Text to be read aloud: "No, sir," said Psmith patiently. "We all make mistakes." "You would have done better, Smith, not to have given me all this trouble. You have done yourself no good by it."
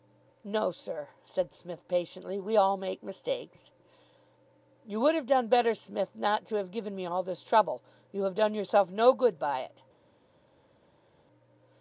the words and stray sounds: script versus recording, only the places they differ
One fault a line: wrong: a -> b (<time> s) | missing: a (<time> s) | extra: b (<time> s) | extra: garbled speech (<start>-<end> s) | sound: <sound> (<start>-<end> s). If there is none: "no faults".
no faults